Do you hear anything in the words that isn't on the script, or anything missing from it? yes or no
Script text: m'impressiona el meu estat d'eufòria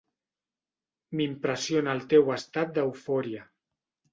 yes